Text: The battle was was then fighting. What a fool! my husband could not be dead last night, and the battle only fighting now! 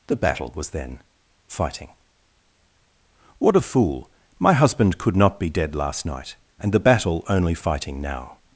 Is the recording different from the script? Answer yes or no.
yes